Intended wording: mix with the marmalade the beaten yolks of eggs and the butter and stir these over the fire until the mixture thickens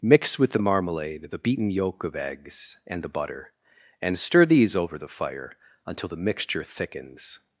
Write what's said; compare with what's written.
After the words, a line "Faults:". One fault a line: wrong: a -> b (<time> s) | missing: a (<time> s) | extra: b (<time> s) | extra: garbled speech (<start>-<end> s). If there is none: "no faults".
mix with the marmalade the beaten yolk of eggs and the butter and stir these over the fire until the mixture thickens
Faults:
wrong: yolks -> yolk (1.7 s)